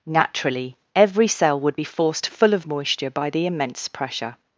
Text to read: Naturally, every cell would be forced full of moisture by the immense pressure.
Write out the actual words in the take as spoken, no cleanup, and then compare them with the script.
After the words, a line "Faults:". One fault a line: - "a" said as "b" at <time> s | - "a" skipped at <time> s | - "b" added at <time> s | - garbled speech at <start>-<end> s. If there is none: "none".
Naturally, every cell would be forced full of moisture by the immense pressure.
Faults:
none